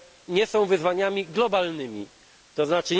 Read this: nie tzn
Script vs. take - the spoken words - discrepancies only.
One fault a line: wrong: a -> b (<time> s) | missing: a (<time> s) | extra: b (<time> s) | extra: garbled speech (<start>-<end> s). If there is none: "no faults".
extra: są wyzwaniami globalnymi (0.5 s)